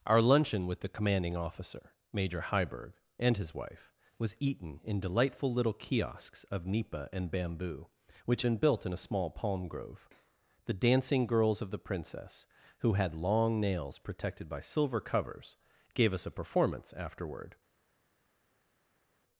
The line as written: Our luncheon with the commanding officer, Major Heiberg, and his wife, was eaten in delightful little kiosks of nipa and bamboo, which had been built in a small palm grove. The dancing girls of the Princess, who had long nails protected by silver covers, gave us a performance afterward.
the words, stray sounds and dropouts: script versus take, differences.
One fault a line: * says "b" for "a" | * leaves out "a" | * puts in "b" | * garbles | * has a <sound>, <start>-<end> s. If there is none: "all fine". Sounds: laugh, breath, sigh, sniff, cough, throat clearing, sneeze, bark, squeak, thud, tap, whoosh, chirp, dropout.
* leaves out "had"